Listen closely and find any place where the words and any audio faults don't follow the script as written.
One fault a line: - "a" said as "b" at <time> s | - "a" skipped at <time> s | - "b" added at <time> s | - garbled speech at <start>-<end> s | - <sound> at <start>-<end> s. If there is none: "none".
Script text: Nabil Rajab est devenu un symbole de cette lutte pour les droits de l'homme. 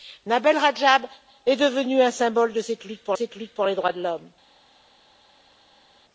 - "cette lutte pour" added at 3.1 s